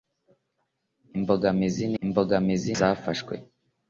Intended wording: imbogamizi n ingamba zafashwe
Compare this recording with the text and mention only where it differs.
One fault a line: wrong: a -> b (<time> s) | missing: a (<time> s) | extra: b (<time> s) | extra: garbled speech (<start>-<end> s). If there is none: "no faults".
wrong: ingamba -> imbogamizi (2.0 s)